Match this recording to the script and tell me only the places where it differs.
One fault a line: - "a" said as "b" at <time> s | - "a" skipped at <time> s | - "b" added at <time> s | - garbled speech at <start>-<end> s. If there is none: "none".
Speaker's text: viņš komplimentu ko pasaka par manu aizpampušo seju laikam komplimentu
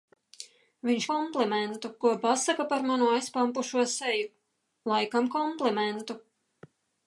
none